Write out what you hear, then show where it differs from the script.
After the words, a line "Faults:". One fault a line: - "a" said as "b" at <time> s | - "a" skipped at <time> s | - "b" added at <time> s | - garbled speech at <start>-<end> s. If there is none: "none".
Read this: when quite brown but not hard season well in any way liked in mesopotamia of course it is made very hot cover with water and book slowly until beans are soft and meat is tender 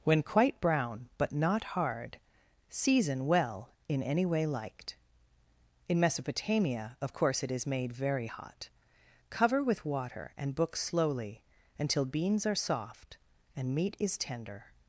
when quite brown but not hard season well in any way liked in mesopotamia of course it is made very hot cover with water and book slowly until beans are soft and meat is tender
Faults:
none